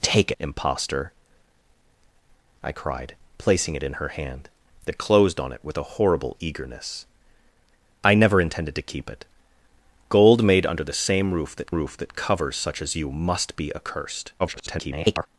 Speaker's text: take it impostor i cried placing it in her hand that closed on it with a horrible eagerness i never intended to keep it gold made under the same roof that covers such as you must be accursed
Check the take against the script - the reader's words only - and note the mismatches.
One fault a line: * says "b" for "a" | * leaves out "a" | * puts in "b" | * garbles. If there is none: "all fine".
* leaves out "it"
* puts in "roof that"
* garbles